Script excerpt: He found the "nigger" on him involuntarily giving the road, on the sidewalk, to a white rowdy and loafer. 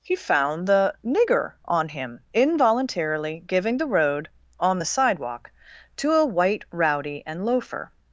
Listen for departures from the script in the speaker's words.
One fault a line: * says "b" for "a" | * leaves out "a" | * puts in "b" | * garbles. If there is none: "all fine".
all fine